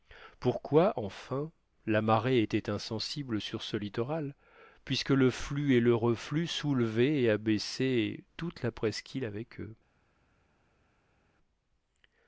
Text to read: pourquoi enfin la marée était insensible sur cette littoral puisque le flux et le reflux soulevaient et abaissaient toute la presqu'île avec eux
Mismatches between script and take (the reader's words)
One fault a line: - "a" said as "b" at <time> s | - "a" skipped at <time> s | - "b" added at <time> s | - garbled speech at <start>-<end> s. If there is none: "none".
- "cette" said as "ce" at 3.6 s